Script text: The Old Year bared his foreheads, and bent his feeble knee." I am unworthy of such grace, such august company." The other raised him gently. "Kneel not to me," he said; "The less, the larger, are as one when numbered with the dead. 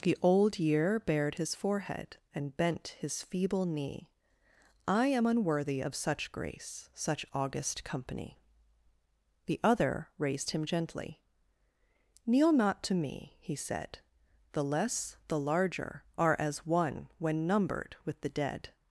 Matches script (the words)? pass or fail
fail